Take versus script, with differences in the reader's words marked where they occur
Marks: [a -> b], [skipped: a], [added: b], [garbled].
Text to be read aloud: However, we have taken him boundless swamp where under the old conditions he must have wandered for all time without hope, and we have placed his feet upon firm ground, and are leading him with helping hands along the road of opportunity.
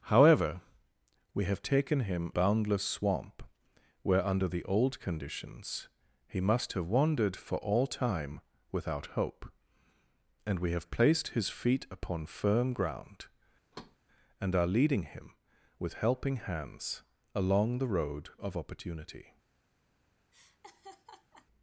However, we have taken him boundless swamp where under the old conditions he must have wandered for all time without hope, and we have placed his feet upon firm ground, and are leading him with helping hands along the road of opportunity.